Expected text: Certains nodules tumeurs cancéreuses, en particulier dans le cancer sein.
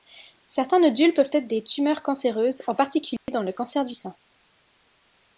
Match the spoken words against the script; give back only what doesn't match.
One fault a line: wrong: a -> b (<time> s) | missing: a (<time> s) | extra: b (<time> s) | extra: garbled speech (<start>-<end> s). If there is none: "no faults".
extra: peuvent être des (1.1 s)
extra: du (3.8 s)